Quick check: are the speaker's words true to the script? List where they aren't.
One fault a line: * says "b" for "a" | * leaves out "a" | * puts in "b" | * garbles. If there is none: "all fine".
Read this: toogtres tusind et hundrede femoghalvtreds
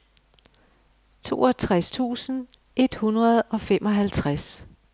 * puts in "og"